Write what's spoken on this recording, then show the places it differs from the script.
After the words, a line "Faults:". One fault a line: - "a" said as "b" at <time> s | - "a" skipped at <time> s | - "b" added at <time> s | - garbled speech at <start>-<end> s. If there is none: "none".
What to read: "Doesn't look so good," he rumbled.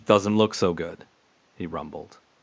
"Doesn't look so good," he rumbled.
Faults:
none